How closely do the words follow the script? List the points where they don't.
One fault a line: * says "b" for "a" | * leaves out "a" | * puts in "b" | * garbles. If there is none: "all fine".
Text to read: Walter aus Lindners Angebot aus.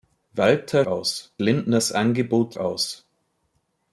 all fine